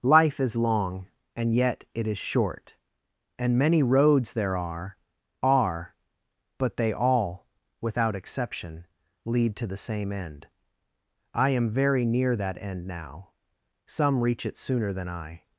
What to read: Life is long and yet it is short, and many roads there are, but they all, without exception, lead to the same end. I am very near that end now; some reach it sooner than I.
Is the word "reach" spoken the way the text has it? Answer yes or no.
yes